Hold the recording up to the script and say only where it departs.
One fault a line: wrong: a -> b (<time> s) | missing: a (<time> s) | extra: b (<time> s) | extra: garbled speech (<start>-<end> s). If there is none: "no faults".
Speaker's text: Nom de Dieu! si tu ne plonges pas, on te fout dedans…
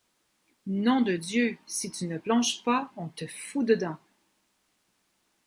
no faults